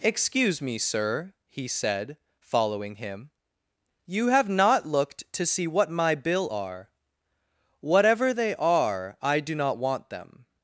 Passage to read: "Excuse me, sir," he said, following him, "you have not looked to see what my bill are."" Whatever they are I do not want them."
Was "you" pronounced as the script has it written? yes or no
yes